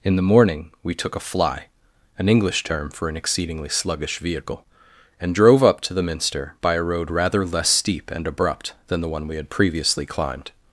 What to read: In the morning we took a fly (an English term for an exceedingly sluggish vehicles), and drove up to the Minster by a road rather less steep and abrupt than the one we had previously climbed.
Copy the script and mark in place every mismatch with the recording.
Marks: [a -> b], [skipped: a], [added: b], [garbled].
In the morning we took a fly (an English term for an exceedingly sluggish [vehicles), -> vehicle] and drove up to the Minster by a road rather less steep and abrupt than the one we had previously climbed.